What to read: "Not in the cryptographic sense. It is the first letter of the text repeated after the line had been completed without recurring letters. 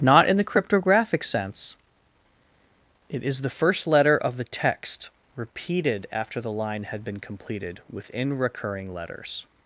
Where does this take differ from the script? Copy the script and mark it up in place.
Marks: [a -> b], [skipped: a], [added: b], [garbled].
"Not in the cryptographic sense. It is the first letter of the text repeated after the line had been completed [without -> within] recurring letters.